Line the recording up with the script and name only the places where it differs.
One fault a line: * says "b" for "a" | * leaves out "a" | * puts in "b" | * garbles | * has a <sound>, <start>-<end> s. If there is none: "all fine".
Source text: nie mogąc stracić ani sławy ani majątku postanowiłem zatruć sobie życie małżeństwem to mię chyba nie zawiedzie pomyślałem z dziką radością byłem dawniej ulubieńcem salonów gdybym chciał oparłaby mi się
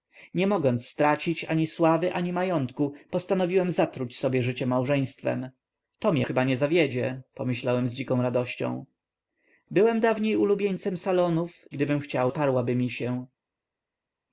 all fine